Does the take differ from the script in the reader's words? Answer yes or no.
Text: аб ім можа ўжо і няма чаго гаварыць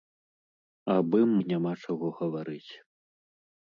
yes